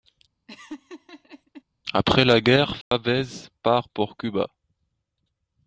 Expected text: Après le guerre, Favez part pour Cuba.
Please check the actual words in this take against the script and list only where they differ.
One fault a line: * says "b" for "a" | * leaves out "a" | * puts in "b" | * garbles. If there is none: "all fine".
* says "la" for "le"